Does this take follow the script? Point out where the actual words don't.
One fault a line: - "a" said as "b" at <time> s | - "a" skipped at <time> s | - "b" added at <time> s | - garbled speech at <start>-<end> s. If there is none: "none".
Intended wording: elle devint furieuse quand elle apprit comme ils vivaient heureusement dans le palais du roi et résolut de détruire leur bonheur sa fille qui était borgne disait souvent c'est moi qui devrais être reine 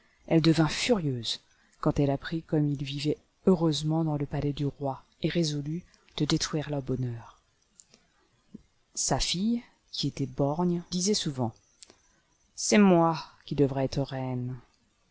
none